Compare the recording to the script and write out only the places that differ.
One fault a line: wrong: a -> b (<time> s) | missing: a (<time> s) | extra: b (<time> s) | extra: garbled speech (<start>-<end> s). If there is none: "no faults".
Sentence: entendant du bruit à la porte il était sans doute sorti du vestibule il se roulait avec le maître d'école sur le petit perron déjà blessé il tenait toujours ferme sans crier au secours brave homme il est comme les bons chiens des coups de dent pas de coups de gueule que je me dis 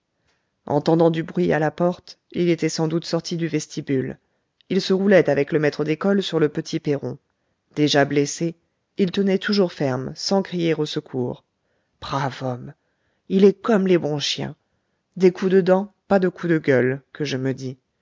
no faults